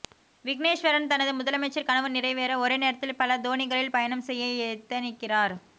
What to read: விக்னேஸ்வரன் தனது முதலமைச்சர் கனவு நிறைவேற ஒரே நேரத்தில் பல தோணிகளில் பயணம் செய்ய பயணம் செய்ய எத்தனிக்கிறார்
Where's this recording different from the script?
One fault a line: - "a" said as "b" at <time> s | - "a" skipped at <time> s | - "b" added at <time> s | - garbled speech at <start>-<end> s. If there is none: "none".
- "பயணம் செய்ய" skipped at 4.5 s